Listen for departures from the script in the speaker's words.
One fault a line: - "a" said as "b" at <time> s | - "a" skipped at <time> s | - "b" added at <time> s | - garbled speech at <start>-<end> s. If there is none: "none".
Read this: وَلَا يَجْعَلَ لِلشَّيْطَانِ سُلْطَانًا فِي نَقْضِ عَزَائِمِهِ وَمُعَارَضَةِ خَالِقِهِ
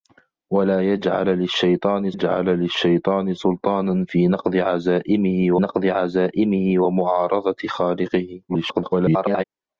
- "يَجْعَلَ لِلشَّيْطَانِ" added at 2.1 s
- "نَقْضِ عَزَائِمِهِ" added at 5.6 s
- garbled speech at 8.5-9.4 s